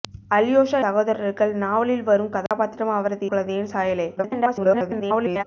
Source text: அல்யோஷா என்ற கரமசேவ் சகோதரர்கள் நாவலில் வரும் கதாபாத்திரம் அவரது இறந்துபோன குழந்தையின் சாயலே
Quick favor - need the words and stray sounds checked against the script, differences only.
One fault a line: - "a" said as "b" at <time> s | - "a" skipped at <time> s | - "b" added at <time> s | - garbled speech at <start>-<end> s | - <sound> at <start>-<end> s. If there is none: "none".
- "என்ற கரமசேவ்" skipped at 0.8 s
- dropout at 2.5-2.5 s
- "இறந்துபோன" skipped at 3.3 s
- garbled speech at 4.2-5.4 s